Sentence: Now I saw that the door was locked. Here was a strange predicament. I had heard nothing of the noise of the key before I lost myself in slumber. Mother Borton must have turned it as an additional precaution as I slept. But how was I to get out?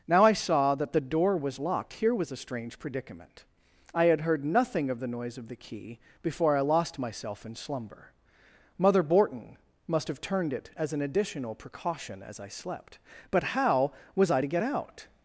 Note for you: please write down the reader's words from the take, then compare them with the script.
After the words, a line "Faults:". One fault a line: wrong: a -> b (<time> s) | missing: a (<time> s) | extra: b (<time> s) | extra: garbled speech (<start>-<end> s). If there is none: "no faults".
Now I saw that the door was locked. Here was a strange predicament. I had heard nothing of the noise of the key before I lost myself in slumber. Mother Borton must have turned it as an additional precaution as I slept. But how was I to get out?
Faults:
no faults